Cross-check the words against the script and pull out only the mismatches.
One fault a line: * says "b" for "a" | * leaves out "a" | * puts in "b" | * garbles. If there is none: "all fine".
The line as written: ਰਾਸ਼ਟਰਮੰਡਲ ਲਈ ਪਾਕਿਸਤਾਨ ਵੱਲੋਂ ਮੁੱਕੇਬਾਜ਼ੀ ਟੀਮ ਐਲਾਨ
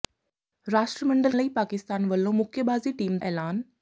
all fine